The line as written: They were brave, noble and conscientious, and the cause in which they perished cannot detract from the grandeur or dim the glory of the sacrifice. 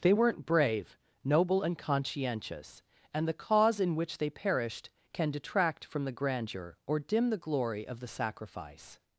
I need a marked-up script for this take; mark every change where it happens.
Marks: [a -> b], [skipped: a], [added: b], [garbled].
They [were -> weren't] brave, noble and conscientious, and the cause in which they perished [cannot -> can] detract from the grandeur or dim the glory of the sacrifice.